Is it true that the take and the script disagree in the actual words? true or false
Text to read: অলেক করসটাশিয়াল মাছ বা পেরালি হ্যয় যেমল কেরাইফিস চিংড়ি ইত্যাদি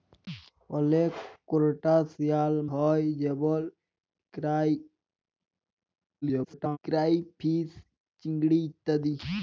true